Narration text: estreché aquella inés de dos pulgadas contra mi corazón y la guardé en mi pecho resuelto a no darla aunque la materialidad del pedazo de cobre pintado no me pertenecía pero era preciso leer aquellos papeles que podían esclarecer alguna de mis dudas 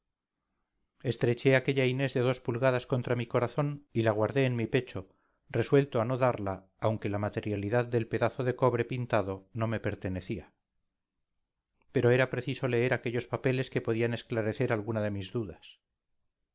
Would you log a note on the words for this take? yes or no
no